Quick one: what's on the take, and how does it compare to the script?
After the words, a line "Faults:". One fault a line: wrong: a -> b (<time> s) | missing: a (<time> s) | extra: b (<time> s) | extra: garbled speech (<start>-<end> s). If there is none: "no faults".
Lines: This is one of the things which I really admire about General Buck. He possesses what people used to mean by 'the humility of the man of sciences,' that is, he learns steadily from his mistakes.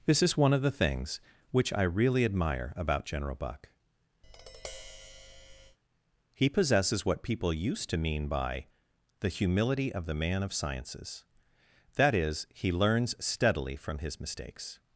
This is one of the things which I really admire about General Buck. He possesses what people used to mean by 'the humility of the man of sciences,' that is, he learns steadily from his mistakes.
Faults:
no faults